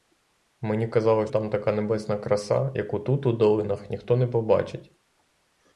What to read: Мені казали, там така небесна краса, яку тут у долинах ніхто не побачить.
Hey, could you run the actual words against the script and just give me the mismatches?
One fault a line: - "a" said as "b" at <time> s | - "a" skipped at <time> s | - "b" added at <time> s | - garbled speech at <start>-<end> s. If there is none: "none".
none